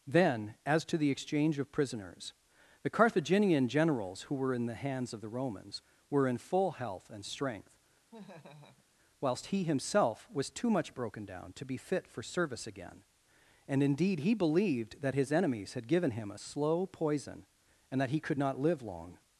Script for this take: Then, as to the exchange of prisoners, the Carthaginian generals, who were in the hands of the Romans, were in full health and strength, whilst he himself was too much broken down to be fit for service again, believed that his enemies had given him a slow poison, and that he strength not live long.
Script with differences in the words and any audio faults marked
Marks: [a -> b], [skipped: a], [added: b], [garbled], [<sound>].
Then, as to the exchange of prisoners, the Carthaginian generals, who were in the hands of the Romans, were in full health and strength, [laugh] whilst he himself was too much broken down to be fit for service again, [added: and indeed he] believed that his enemies had given him a slow poison, and that he [strength -> could] not live long.